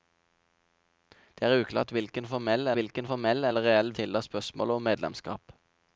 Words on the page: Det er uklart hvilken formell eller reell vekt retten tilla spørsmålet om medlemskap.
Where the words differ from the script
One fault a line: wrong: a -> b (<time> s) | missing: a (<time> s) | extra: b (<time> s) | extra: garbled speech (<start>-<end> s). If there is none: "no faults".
extra: hvilken formell (2.8 s)
missing: vekt retten (3.9 s)